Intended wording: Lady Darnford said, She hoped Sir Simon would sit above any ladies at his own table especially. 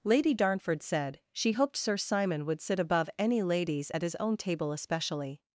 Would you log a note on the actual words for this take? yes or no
no